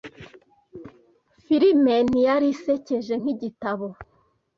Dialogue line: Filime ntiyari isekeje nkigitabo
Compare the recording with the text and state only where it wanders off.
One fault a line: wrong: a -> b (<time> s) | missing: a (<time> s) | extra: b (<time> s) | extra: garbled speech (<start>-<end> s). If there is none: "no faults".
no faults